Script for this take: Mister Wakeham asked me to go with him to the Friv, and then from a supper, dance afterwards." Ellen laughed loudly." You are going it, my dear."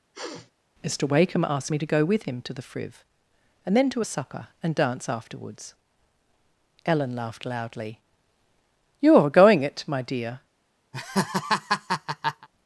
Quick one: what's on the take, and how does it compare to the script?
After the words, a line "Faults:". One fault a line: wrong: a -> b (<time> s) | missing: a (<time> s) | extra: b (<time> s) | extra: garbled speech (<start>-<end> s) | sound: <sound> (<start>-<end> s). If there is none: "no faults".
Mister Wakeham asked me to go with him to the Friv, and then to a supper, and dance afterwards." Ellen laughed loudly." You are going it, my dear."
Faults:
sound: sniff (0.1-0.5 s)
wrong: from -> to (3.9 s)
extra: and (4.6 s)
sound: laugh (10.9-12.5 s)